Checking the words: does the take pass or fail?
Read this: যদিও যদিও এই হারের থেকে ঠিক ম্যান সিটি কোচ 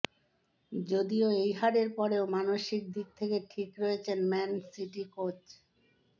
fail